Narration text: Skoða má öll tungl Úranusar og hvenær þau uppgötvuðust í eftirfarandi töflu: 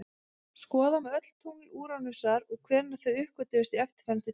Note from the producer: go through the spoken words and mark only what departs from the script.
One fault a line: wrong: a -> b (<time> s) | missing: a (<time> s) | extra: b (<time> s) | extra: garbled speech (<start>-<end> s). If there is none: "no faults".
no faults